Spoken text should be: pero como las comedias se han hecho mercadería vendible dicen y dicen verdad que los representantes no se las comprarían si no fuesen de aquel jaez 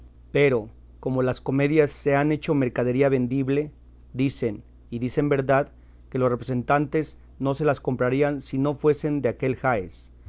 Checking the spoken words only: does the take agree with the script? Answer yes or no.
yes